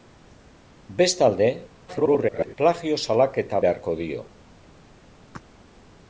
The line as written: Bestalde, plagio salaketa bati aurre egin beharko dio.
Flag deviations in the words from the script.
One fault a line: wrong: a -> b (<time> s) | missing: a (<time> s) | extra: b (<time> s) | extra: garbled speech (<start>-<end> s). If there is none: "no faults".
extra: garbled speech (1.9-2.5 s)
missing: bati aurre egin (3.6 s)